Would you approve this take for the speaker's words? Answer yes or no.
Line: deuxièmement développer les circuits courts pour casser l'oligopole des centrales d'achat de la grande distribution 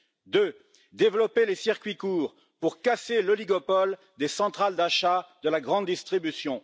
yes